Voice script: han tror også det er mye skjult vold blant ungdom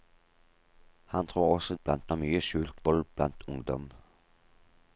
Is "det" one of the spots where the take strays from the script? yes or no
yes